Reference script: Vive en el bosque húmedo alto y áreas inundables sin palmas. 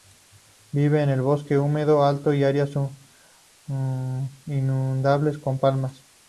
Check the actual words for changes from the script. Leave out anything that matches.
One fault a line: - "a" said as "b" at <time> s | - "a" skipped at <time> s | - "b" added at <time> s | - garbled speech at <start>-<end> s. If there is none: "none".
- "sin" said as "con" at 5.4 s